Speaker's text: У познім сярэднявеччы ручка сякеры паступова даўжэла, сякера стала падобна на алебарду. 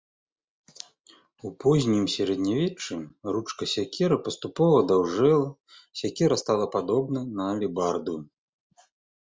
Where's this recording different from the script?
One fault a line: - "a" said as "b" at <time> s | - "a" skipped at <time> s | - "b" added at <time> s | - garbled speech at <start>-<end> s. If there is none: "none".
none